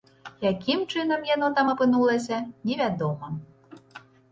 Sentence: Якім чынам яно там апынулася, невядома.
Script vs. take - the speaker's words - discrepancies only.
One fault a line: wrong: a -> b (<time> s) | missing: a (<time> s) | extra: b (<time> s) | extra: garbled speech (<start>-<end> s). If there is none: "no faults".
no faults